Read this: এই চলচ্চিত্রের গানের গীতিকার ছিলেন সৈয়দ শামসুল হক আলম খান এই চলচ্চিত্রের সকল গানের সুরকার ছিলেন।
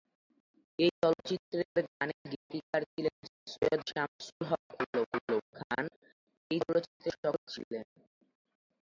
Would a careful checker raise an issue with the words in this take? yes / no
yes